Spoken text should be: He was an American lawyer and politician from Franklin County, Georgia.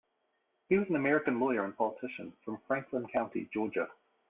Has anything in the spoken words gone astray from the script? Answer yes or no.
no